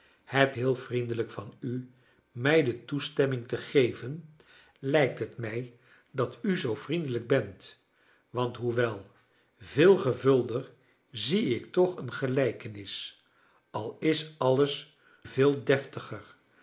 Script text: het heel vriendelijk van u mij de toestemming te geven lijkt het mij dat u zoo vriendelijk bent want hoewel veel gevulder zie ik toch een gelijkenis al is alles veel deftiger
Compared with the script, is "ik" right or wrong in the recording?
right